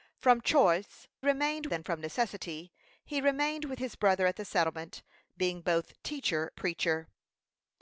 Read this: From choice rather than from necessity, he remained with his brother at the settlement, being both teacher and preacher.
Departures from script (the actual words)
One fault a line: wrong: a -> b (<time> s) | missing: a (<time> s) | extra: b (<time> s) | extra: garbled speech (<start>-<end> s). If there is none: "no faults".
wrong: rather -> remained (1.2 s)
missing: and (6.5 s)